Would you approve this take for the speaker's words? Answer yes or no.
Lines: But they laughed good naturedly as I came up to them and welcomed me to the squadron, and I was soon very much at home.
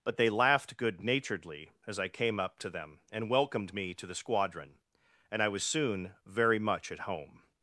yes